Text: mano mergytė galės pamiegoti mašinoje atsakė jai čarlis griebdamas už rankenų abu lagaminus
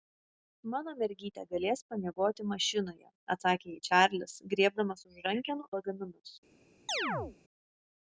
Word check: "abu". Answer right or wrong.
wrong